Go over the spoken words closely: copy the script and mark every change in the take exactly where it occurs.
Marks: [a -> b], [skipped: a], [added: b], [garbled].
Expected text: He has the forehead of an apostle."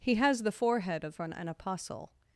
He has the forehead of an [added: an] apostle."